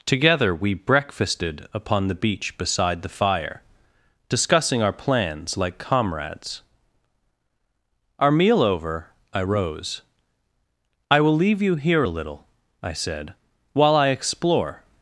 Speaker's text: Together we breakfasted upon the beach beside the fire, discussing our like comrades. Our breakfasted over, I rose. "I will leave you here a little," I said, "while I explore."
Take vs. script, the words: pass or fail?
fail